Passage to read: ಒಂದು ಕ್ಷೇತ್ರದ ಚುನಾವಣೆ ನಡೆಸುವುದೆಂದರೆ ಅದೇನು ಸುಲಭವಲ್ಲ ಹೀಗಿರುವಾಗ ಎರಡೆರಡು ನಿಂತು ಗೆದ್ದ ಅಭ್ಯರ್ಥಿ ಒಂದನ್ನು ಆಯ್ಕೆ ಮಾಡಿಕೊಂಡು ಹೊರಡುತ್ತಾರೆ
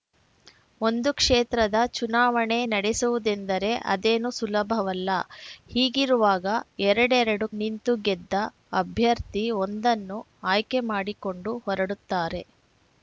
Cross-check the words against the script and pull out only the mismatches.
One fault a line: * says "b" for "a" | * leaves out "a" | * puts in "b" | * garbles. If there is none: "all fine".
all fine